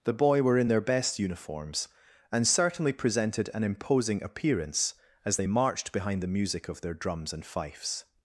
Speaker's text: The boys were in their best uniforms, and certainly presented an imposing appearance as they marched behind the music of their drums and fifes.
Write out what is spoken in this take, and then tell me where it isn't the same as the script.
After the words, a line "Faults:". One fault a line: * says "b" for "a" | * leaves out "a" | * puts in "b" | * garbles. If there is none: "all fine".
The boy were in their best uniforms, and certainly presented an imposing appearance as they marched behind the music of their drums and fifes.
Faults:
* says "boy" for "boys"